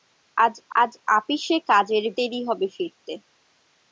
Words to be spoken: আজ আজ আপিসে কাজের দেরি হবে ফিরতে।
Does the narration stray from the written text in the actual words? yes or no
no